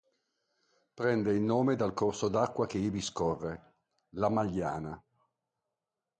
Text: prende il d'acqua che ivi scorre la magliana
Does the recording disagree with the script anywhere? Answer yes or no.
yes